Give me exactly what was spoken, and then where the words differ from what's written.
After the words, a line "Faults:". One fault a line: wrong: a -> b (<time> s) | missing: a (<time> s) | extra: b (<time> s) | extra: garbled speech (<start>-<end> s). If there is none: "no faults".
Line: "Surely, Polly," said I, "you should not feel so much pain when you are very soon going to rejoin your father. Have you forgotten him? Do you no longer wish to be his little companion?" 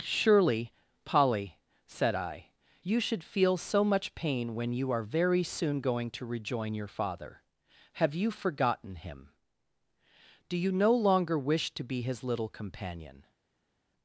"Surely, Polly," said I, "you should feel so much pain when you are very soon going to rejoin your father. Have you forgotten him? Do you no longer wish to be his little companion?"
Faults:
missing: not (3.2 s)